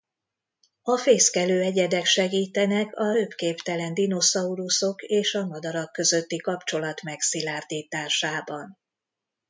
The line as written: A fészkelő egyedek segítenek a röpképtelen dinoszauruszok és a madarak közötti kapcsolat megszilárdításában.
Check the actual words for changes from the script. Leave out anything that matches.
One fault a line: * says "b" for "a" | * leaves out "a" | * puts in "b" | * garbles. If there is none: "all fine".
all fine